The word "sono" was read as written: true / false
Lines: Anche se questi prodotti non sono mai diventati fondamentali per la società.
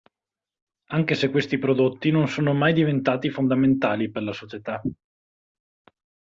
true